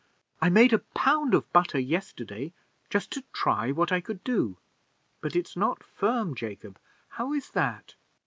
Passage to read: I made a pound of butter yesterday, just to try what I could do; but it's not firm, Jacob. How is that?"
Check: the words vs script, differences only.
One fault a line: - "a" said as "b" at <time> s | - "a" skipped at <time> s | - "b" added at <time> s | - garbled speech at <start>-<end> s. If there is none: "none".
none